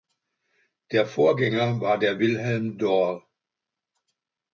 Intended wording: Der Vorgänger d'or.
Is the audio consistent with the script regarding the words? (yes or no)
no